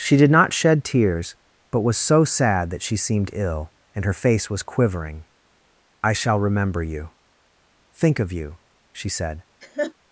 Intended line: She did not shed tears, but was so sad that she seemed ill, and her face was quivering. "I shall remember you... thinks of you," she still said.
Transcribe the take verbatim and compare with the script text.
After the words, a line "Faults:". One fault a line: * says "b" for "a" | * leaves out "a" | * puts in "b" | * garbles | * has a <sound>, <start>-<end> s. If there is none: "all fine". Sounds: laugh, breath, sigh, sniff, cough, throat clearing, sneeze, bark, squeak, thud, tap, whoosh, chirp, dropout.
She did not shed tears, but was so sad that she seemed ill, and her face was quivering. "I shall remember you... think of you," she said.
Faults:
* says "think" for "thinks"
* leaves out "still"
* has a laugh, 9.6-9.9 s